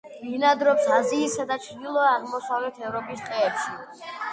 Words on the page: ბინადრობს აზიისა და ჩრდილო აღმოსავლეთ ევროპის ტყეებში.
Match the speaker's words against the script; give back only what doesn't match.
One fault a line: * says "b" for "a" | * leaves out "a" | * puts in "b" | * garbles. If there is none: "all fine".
all fine